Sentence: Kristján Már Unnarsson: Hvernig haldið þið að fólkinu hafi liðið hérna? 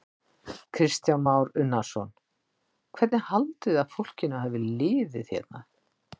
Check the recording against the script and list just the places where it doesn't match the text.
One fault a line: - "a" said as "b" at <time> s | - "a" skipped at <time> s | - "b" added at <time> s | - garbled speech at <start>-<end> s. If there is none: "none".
none